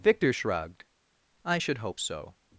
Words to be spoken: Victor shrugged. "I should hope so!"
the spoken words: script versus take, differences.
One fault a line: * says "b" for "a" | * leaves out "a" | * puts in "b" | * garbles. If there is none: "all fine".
all fine